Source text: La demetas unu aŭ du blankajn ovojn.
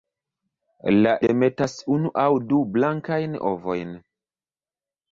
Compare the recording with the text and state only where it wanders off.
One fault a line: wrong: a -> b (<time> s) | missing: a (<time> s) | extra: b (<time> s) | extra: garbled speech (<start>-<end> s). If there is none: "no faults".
no faults